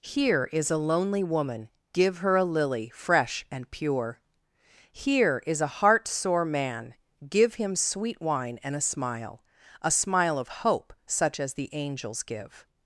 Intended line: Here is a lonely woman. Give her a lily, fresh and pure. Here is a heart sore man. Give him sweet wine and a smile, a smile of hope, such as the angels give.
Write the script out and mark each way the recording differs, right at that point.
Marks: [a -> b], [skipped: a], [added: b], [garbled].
Here is a lonely woman. Give her a lily, fresh and pure. Here is a heart sore man. Give him sweet wine and a smile, a smile of hope, such as the angels give.